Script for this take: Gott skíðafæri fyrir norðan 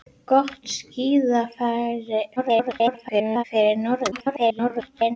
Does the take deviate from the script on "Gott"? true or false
false